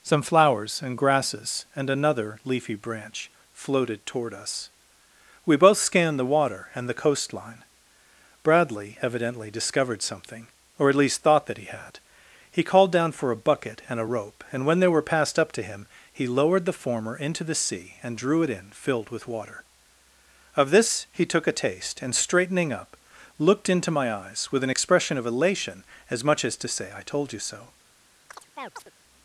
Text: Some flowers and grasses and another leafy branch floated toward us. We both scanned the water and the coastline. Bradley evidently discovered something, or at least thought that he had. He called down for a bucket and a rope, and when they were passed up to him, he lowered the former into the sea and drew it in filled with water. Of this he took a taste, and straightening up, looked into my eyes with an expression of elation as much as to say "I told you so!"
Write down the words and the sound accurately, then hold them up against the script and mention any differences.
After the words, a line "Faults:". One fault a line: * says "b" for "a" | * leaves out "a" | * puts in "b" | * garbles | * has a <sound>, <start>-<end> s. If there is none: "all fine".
Some flowers and grasses and another leafy branch floated toward us. We both scanned the water and the coastline. Bradley evidently discovered something, or at least thought that he had. He called down for a bucket and a rope, and when they were passed up to him, he lowered the former into the sea and drew it in filled with water. Of this he took a taste, and straightening up, looked into my eyes with an expression of elation as much as to say "I told you so!"
Faults:
* has a chirp, 28.3-28.9 s